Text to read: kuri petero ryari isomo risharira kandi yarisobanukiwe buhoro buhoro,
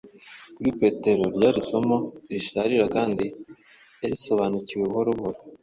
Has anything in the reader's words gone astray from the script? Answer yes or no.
no